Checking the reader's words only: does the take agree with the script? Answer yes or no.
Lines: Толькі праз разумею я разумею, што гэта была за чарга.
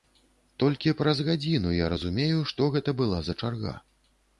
no